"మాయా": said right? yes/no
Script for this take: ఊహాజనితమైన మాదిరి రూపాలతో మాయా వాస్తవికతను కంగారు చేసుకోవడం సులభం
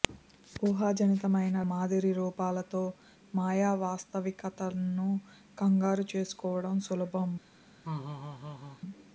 yes